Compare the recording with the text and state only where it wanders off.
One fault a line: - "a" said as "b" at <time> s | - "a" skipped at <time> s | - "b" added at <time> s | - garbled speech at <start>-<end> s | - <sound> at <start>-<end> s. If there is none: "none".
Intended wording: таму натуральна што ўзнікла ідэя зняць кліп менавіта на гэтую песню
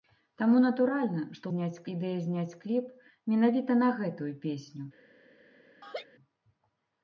- "ўзнікла" said as "зняць" at 1.5 s
- laugh at 5.8-6.1 s